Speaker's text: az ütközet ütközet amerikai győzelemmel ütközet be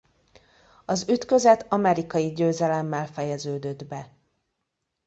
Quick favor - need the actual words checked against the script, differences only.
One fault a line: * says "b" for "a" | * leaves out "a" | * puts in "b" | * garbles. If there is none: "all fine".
* leaves out "ütközet"
* says "fejeződött" for "ütközet"